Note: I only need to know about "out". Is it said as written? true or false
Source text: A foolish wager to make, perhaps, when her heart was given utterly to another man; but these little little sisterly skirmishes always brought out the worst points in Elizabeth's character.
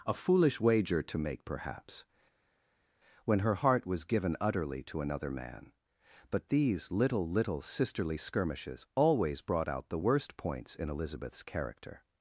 true